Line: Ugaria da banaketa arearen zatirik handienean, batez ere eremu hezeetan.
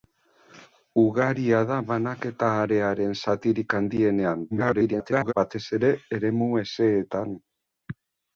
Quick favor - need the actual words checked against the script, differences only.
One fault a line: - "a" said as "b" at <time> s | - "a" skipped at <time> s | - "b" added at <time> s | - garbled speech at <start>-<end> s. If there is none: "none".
- garbled speech at 4.5-5.3 s